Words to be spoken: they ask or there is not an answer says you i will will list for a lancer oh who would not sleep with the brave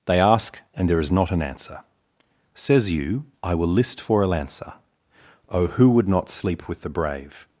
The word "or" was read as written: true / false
false